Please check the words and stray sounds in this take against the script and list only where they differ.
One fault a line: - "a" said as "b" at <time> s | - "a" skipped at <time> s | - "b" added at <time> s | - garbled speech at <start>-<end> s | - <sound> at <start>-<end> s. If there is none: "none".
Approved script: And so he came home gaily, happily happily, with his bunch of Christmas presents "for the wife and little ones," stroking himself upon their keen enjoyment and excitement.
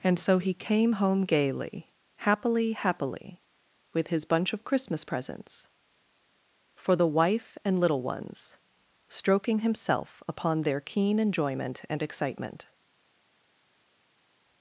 none